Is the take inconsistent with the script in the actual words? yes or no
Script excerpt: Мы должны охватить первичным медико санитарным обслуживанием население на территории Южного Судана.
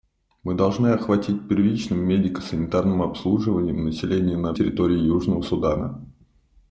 no